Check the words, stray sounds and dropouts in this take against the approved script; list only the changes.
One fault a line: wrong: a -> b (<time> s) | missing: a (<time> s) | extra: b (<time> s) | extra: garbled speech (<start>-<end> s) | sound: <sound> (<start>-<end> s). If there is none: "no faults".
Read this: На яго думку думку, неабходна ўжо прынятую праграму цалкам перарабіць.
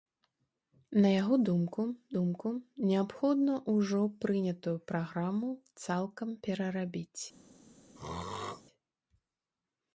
sound: throat clearing (8.0-8.6 s)